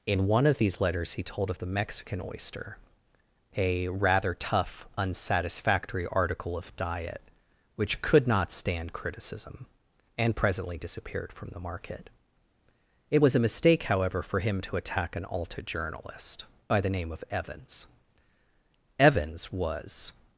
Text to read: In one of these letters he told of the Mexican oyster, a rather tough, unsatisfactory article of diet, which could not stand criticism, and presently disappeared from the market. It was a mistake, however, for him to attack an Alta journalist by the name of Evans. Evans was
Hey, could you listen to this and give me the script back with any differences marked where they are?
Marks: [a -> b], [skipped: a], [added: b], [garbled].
In one of these letters he told of the Mexican oyster, a rather tough, unsatisfactory article of diet, which could not stand criticism, and presently disappeared from the market. It was a mistake, however, for him to attack an Alta journalist by the name of Evans. Evans was